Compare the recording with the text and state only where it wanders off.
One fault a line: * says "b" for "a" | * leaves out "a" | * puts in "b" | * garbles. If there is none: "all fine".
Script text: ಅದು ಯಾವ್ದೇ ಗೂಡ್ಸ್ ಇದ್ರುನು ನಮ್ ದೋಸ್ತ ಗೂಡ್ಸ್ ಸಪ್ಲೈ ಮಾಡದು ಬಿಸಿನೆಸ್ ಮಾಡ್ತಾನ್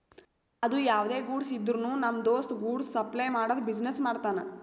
all fine